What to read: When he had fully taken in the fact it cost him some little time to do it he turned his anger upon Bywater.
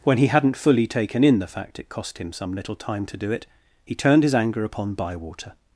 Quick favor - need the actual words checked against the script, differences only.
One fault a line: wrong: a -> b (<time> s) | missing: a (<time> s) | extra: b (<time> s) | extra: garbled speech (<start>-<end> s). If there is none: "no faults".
wrong: had -> hadn't (0.3 s)